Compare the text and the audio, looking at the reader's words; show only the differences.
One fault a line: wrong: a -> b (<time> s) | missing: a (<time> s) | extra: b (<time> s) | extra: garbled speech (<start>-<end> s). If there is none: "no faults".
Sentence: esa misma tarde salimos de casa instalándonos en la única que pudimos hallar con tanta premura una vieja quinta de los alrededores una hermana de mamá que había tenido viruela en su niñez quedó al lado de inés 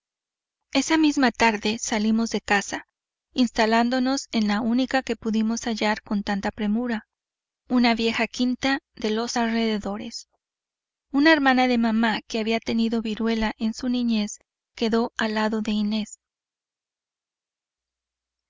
no faults